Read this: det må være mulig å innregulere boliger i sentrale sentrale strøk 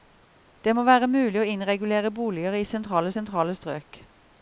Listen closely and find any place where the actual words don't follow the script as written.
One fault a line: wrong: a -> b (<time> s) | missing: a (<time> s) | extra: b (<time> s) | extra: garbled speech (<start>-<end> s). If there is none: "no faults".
no faults